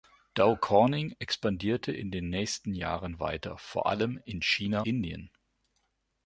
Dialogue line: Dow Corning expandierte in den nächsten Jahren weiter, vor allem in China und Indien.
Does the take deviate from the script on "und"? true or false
true